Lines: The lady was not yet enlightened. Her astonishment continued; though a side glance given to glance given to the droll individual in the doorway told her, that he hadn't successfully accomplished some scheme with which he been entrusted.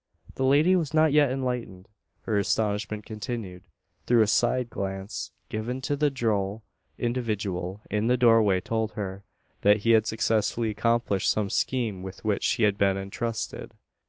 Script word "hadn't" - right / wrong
wrong